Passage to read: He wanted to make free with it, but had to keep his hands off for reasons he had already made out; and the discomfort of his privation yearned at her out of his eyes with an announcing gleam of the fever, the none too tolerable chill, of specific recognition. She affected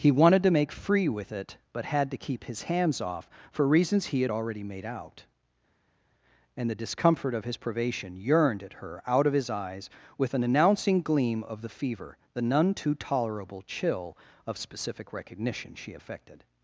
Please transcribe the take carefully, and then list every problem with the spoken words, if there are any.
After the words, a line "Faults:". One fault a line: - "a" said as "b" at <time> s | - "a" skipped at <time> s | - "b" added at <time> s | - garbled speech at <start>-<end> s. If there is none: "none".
He wanted to make free with it, but had to keep his hands off for reasons he had already made out; and the discomfort of his privation yearned at her out of his eyes with an announcing gleam of the fever, the none too tolerable chill, of specific recognition. She affected
Faults:
none